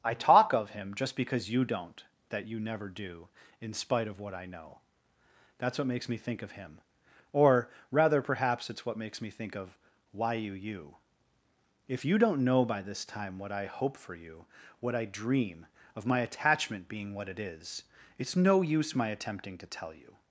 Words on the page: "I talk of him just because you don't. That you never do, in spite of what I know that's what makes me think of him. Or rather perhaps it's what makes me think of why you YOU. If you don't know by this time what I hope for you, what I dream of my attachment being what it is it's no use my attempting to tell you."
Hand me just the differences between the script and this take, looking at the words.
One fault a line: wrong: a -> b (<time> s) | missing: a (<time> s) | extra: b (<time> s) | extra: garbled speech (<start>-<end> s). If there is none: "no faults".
no faults